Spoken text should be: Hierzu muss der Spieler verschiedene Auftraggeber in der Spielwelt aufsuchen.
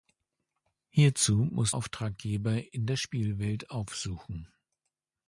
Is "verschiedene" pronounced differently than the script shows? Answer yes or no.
yes